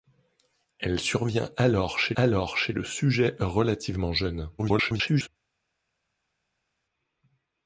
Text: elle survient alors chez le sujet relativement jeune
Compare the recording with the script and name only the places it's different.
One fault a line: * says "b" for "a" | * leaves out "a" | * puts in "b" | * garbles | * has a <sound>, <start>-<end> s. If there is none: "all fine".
* puts in "alors chez"
* garbles